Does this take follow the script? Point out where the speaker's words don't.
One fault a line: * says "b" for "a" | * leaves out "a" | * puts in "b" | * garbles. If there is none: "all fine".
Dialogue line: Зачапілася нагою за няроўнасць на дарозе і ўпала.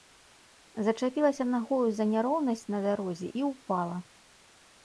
all fine